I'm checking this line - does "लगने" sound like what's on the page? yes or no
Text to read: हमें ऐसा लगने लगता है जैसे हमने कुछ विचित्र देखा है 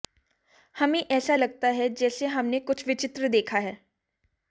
no